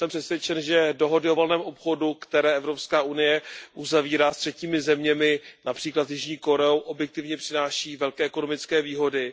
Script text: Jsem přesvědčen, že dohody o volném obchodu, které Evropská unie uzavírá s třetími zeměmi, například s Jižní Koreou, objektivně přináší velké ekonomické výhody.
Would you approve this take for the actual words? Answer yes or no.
yes